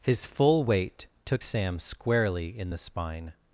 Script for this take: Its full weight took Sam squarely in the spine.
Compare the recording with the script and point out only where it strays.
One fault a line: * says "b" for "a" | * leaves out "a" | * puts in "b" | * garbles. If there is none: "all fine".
* says "His" for "Its"